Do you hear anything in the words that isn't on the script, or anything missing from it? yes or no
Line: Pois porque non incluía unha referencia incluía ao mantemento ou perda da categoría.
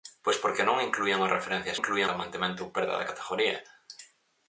no